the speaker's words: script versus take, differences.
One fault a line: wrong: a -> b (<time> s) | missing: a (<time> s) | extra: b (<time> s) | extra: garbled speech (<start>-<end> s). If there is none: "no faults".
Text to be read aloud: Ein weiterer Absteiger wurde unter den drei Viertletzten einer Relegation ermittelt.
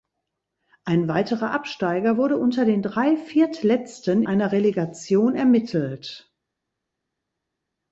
no faults